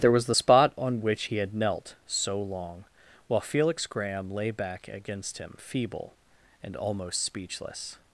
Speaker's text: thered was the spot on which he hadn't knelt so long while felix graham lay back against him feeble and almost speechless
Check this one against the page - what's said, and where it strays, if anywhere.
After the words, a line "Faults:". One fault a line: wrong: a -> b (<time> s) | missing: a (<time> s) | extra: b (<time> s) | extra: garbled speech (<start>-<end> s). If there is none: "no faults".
there was the spot on which he had knelt so long while felix graham lay back against him feeble and almost speechless
Faults:
wrong: thered -> there (0.0 s)
wrong: hadn't -> had (1.4 s)